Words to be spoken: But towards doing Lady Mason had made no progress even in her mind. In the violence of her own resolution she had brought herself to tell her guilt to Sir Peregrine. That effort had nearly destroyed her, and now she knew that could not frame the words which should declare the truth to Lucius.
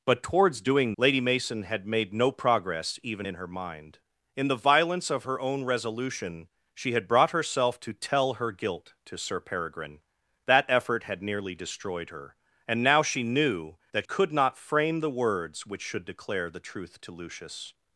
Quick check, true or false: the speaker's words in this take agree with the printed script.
true